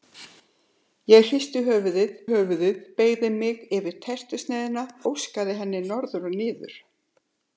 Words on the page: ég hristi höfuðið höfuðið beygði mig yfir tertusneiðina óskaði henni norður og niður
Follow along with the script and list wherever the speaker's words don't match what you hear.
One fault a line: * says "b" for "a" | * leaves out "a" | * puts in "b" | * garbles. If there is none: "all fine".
all fine